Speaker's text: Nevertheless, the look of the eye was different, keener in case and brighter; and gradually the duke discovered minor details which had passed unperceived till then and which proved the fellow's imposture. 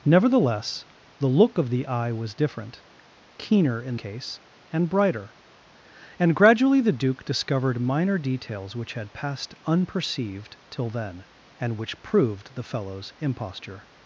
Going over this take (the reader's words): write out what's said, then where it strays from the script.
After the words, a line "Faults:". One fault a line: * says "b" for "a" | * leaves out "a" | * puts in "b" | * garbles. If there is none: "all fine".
Nevertheless, the look of the eye was different, keener in case and brighter; and gradually the duke discovered minor details which had passed unperceived till then and which proved the fellow's imposture.
Faults:
all fine